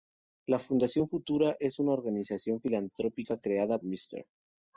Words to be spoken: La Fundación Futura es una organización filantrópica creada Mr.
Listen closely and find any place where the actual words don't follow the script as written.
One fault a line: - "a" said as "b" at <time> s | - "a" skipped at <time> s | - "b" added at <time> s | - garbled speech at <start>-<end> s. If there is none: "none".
none